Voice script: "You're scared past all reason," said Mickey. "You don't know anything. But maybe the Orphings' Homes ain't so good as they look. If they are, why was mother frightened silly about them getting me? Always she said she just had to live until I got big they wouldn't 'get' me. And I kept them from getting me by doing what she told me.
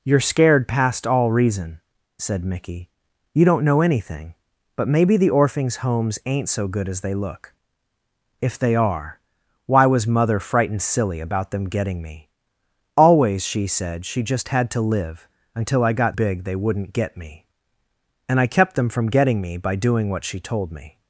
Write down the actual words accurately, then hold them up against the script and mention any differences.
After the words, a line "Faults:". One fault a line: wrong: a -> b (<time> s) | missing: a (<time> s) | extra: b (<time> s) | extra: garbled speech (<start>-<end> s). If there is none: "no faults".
"You're scared past all reason," said Mickey. "You don't know anything. But maybe the Orphings' Homes ain't so good as they look. If they are, why was mother frightened silly about them getting me? Always she said she just had to live until I got big they wouldn't 'get' me. And I kept them from getting me by doing what she told me.
Faults:
no faults